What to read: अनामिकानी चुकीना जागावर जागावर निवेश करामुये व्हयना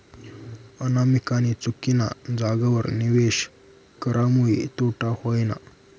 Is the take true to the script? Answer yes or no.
no